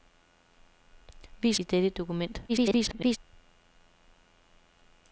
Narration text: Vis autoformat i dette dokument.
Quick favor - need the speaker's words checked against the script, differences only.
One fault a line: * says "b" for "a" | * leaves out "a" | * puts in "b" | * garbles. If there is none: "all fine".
* leaves out "autoformat"
* garbles